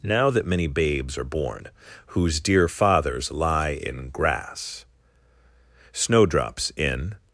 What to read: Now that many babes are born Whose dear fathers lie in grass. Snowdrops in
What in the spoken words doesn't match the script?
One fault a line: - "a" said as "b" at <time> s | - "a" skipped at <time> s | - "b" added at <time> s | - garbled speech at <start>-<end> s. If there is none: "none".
none